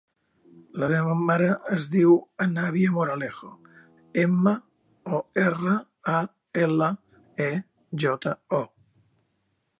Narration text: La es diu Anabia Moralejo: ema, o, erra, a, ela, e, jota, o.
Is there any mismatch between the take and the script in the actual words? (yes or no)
yes